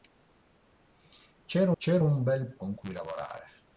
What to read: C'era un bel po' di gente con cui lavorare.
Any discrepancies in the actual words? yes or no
yes